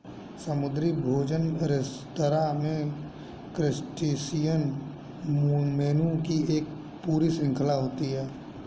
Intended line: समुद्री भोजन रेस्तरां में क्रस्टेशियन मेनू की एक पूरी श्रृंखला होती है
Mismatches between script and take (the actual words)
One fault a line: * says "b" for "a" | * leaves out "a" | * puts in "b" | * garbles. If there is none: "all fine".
all fine